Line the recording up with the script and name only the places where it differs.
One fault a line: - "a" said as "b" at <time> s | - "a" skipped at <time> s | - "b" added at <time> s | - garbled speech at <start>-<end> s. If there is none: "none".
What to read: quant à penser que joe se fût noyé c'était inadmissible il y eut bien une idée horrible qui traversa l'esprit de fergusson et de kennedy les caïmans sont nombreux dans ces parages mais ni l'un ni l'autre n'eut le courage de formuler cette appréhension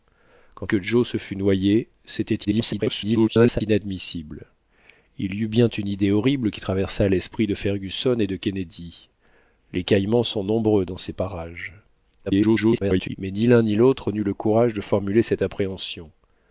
- "à penser" skipped at 0.7 s
- garbled speech at 2.4-3.6 s
- garbled speech at 12.3-13.2 s